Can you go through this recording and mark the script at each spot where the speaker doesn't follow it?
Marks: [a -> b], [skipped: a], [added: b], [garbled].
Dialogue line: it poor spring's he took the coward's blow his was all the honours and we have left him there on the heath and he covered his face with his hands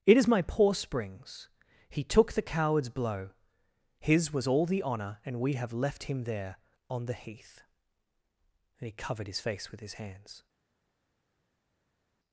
it [added: is my] poor spring's he took the coward's blow his was all the [honours -> honour] and we have left him there on the heath and he covered his face with his hands